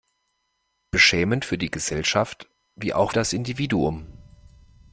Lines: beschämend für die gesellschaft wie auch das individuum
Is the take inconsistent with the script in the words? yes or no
no